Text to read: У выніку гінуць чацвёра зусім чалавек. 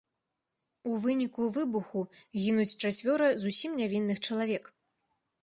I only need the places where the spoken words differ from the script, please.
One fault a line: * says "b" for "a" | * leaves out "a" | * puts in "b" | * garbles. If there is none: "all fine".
* puts in "выбуху"
* puts in "нявінных"